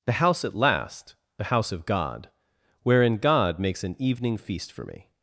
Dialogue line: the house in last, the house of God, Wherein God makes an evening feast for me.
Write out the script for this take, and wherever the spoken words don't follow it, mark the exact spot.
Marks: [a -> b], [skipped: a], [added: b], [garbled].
the house [in -> at] last, the house of God, Wherein God makes an evening feast for me.